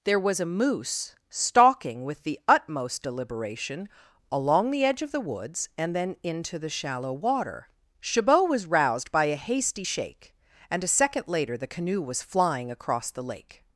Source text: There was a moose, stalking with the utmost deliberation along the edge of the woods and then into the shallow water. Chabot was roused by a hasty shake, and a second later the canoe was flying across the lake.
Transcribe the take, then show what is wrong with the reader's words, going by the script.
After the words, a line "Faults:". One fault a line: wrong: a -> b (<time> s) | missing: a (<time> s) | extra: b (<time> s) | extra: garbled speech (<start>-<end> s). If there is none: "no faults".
There was a moose, stalking with the utmost deliberation along the edge of the woods and then into the shallow water. Chabot was roused by a hasty shake, and a second later the canoe was flying across the lake.
Faults:
no faults